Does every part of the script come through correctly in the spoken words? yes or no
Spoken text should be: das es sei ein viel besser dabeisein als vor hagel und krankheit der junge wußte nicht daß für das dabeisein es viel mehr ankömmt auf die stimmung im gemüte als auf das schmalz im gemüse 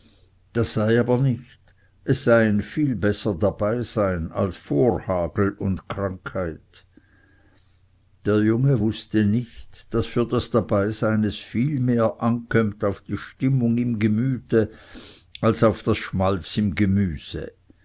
no